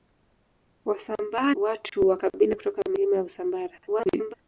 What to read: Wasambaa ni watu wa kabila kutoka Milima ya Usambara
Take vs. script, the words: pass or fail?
fail